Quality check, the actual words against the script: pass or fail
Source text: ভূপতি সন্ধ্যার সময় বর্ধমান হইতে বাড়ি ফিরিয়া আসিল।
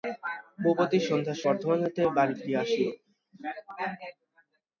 fail